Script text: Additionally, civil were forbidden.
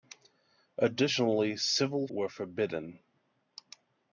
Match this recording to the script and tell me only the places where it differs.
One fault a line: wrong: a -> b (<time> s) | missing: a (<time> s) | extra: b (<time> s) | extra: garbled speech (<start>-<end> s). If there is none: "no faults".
no faults